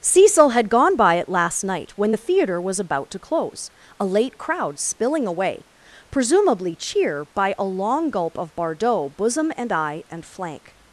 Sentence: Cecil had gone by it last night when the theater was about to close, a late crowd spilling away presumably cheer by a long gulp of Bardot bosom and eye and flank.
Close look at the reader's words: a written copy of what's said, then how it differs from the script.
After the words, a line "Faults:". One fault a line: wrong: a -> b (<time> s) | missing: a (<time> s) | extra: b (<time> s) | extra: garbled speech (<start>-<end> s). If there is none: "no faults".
Cecil had gone by it last night when the theater was about to close, a late crowd spilling away presumably cheer by a long gulp of Bardot bosom and eye and flank.
Faults:
no faults